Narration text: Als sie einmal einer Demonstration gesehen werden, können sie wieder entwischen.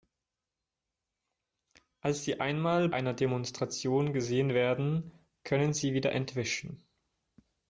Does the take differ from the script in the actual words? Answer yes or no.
no